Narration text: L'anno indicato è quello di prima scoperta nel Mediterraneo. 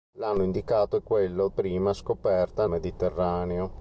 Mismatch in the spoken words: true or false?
true